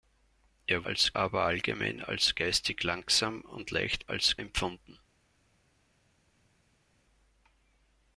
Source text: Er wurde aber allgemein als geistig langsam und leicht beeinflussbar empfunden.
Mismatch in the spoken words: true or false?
true